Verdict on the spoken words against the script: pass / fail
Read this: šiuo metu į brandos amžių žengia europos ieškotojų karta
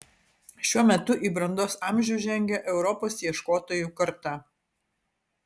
pass